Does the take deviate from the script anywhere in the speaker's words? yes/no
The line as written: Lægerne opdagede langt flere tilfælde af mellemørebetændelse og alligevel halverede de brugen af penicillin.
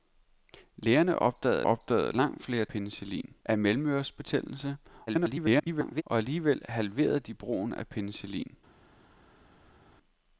yes